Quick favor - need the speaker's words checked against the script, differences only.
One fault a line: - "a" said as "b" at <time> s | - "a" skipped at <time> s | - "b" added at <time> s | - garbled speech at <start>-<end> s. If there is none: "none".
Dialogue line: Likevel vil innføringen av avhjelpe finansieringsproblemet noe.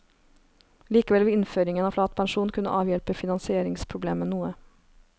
- "flat pensjon kunne" added at 1.9 s